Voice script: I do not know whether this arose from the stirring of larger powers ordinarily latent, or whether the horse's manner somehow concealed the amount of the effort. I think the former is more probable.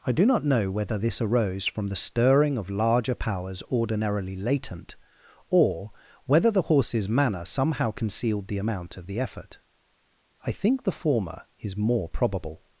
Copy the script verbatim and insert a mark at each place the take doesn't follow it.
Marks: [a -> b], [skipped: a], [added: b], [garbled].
I do not know whether this arose from the stirring of larger powers ordinarily latent, or whether the horse's manner somehow concealed the amount of the effort. I think the former is more probable.